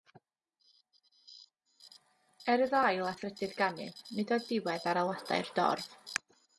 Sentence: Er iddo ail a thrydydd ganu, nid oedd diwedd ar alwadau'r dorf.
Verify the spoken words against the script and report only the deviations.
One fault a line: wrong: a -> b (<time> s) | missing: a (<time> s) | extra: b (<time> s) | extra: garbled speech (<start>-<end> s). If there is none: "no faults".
no faults